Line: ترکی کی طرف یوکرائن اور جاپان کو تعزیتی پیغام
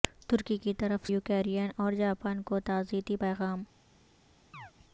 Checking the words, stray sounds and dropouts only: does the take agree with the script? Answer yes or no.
no